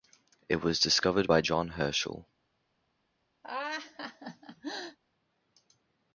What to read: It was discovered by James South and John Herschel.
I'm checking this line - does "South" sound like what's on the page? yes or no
no